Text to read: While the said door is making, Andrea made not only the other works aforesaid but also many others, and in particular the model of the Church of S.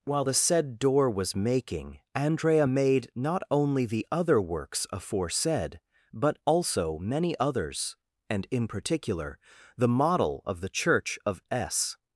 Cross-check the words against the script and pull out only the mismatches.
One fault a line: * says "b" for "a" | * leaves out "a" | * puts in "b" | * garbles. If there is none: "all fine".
* says "was" for "is"